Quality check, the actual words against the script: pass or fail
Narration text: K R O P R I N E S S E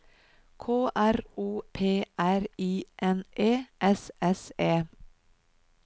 pass